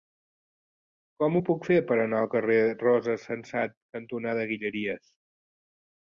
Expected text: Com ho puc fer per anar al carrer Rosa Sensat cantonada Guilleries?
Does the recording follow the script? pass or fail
pass